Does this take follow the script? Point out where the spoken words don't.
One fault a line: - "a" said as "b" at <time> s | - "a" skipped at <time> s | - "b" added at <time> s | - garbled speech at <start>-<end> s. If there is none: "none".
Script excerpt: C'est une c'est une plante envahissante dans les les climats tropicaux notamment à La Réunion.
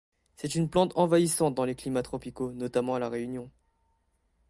- "c'est une" skipped at 0.7 s
- "les" skipped at 1.8 s